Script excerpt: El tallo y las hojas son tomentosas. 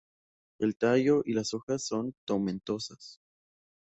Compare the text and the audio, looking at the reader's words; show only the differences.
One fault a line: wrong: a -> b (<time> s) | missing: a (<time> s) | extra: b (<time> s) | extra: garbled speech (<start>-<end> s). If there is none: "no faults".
no faults